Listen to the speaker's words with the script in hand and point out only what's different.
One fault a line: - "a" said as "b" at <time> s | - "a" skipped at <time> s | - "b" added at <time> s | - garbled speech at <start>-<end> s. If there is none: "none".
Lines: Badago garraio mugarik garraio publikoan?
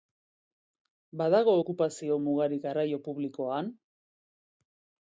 - "garraio" said as "okupazio" at 1.6 s